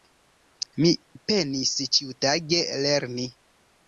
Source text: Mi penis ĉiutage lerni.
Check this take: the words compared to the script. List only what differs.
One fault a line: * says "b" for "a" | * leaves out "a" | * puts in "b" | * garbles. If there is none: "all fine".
all fine